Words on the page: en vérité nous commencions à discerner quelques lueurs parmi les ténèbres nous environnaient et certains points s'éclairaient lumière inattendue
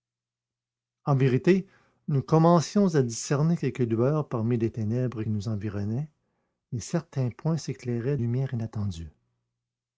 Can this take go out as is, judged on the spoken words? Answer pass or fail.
pass